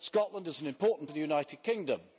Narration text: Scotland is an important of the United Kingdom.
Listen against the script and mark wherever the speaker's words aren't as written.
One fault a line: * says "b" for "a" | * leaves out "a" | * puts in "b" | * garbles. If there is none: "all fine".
all fine